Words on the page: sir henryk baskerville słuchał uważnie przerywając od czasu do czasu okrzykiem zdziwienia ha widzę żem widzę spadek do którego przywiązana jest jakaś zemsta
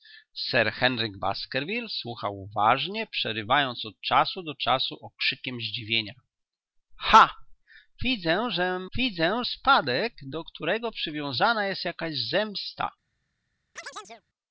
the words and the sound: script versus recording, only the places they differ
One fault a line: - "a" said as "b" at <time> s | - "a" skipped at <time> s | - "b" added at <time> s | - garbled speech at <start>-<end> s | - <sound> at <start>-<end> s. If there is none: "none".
- chirp at 13.8-14.2 s